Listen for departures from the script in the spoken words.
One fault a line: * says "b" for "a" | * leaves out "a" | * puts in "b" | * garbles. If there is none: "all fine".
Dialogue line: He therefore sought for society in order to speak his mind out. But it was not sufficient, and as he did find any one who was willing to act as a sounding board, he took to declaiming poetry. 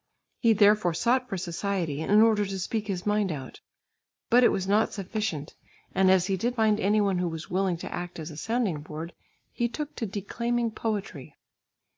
all fine